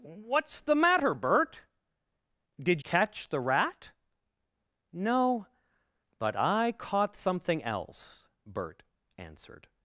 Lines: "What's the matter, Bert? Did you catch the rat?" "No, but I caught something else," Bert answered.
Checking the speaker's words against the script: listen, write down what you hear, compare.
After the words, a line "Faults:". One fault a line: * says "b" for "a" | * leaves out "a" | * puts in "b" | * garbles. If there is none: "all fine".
"What's the matter, Bert? Did catch the rat?" "No, but I caught something else," Bert answered.
Faults:
* leaves out "you"